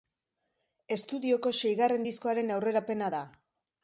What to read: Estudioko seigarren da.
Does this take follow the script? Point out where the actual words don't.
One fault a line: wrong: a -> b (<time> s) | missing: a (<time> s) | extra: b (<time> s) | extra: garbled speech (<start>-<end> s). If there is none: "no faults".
extra: diskoaren aurrerapena (2.1 s)